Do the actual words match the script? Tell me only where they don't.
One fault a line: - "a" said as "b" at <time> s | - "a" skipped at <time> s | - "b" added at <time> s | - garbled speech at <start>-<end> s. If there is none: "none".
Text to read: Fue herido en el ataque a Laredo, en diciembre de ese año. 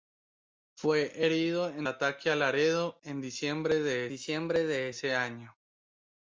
- "el" skipped at 1.9 s
- "diciembre de" added at 4.1 s